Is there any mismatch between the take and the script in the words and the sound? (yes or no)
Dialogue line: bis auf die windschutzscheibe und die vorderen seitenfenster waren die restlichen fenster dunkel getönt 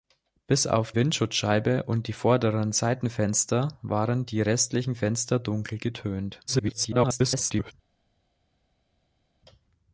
yes